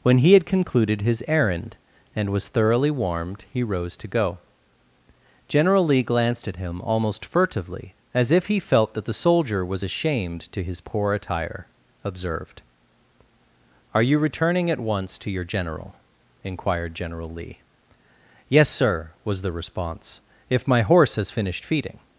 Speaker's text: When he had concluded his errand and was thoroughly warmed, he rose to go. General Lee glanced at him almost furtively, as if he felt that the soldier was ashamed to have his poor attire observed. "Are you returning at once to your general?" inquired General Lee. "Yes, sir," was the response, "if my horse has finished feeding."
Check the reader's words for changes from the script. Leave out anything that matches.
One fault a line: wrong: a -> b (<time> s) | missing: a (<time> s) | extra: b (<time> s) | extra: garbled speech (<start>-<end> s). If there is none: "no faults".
missing: have (10.6 s)